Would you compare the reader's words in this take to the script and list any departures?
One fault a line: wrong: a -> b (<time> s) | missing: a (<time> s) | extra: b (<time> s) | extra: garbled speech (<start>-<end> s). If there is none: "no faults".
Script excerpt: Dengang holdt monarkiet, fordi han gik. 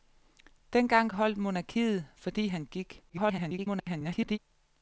extra: garbled speech (3.1-4.4 s)